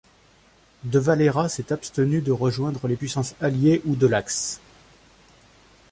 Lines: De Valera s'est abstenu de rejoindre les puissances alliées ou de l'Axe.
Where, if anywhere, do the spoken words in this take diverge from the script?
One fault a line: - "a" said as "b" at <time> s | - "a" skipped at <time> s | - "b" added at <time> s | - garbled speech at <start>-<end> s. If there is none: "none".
none